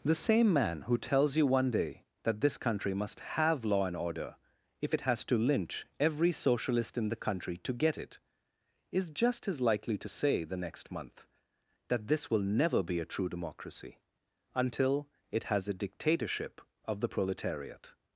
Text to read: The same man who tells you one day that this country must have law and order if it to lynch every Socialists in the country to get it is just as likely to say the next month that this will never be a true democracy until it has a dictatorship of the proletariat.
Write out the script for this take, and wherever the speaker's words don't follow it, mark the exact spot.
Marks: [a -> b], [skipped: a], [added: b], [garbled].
The same man who tells you one day that this country must have law and order if it [added: has] to lynch every [Socialists -> Socialist] in the country to get it is just as likely to say the next month that this will never be a true democracy until it has a dictatorship of the proletariat.